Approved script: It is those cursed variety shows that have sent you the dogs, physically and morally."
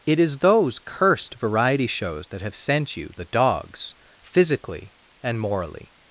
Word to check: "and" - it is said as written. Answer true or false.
true